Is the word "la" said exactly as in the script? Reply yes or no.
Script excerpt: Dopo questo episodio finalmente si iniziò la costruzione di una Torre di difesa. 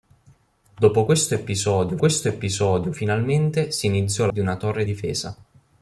no